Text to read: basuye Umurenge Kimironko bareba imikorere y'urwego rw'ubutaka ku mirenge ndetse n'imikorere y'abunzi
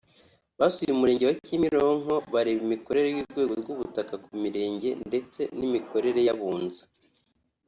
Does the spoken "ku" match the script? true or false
true